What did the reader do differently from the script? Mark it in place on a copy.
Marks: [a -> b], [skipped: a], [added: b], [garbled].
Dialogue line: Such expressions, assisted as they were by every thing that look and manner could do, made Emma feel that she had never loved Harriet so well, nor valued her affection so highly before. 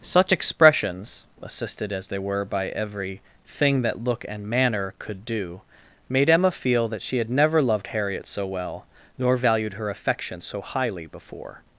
Such expressions, assisted as they were by every thing that look and manner could do, made Emma feel that she had never loved Harriet so well, nor valued her affection so highly before.